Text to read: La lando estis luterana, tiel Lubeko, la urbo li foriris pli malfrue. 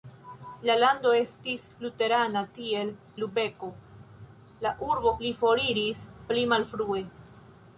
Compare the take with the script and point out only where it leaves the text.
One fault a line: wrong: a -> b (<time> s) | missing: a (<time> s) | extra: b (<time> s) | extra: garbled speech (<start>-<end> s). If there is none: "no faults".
no faults